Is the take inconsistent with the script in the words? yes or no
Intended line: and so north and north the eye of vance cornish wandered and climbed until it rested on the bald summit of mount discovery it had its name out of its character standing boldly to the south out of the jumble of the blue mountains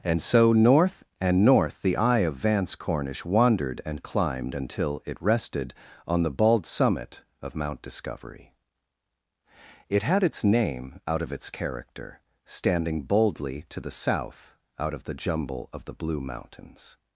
no